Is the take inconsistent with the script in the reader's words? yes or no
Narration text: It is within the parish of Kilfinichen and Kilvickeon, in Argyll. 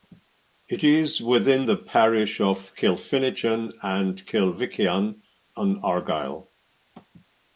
no